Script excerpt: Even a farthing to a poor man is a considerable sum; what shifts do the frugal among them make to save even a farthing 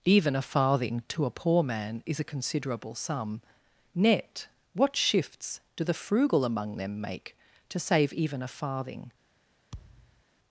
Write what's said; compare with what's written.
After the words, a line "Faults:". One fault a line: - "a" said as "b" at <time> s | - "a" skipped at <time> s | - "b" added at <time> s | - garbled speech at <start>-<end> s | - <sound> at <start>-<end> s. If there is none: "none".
Even a farthing to a poor man is a considerable sum; net what shifts do the frugal among them make to save even a farthing
Faults:
- "net" added at 3.9 s
- thud at 9.7-10.2 s